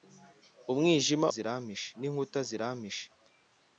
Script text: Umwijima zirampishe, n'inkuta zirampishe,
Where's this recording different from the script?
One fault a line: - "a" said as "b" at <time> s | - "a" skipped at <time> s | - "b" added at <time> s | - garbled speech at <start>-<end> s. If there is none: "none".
none